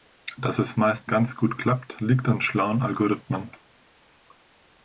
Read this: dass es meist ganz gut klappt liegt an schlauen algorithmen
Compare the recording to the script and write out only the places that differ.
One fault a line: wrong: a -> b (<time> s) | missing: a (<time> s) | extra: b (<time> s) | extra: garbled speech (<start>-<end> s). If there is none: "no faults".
no faults